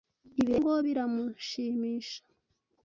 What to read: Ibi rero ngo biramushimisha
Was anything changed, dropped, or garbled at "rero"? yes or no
no